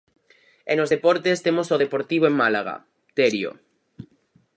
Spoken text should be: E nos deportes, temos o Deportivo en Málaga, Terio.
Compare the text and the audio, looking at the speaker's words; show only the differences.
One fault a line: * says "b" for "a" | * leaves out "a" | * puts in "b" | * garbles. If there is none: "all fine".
all fine